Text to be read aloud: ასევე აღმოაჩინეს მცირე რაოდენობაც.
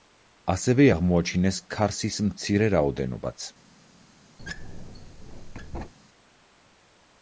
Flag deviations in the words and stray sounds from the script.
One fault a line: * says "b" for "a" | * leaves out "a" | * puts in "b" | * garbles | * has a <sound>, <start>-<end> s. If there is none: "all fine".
* puts in "ქარსის"
* has a squeak, 4.4-5.9 s